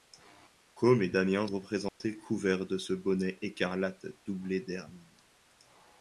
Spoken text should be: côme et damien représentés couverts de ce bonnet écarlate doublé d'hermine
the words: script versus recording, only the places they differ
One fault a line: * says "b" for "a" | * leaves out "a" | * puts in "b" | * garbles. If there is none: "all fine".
all fine